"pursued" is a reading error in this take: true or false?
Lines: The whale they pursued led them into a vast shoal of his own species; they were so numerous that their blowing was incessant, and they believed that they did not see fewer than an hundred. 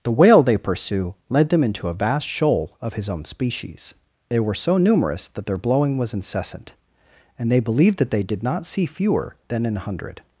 true